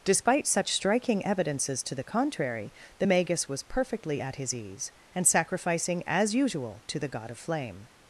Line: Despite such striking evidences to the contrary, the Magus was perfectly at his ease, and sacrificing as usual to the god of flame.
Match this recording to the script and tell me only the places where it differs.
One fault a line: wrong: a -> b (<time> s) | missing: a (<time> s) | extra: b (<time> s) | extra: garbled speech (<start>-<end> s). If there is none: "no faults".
no faults